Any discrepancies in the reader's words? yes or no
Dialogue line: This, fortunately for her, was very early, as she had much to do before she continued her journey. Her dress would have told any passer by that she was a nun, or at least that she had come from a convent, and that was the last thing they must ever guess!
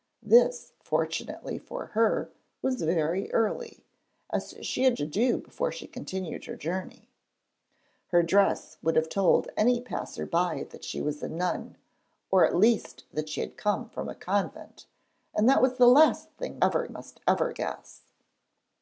yes